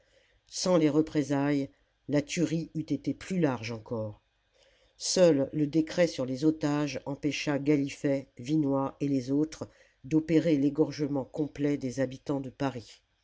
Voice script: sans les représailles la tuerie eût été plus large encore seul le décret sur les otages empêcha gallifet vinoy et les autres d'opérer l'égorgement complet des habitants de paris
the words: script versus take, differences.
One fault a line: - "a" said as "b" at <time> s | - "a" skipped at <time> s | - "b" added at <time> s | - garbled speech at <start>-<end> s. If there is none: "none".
none